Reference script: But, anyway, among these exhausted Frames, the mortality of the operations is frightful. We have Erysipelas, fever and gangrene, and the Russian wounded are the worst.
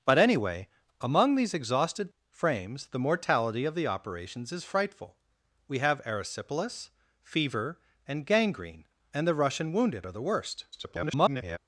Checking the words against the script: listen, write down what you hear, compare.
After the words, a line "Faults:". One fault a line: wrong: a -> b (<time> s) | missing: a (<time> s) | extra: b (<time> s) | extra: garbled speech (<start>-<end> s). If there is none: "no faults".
But, anyway, among these exhausted Frames, the mortality of the operations is frightful. We have Erysipelas, fever and gangrene, and the Russian wounded are the worst. [garbled]
Faults:
extra: garbled speech (10.7-11.6 s)